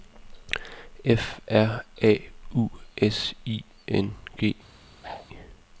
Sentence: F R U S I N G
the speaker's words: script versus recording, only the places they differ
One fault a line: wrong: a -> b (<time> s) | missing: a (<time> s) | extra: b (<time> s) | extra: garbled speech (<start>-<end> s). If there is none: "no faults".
extra: A (2.0 s)